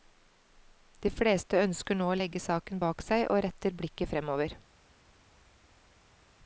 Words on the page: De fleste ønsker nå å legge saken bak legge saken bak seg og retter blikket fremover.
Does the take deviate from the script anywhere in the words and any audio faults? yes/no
yes